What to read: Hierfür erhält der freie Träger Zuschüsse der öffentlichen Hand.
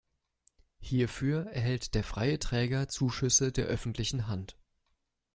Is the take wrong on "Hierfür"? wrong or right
right